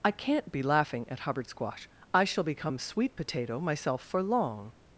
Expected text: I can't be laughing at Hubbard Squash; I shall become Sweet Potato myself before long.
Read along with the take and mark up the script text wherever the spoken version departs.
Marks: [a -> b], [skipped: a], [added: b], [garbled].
I can't be laughing at Hubbard Squash; I shall become Sweet Potato myself [before -> for] long.